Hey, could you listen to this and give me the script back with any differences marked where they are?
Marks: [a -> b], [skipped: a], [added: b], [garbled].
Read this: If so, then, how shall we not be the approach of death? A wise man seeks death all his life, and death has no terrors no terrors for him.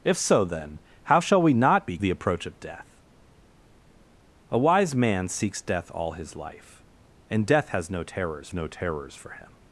If so, then, how shall we not be the approach of death? A wise man seeks death all his life, and death has no terrors no terrors for him.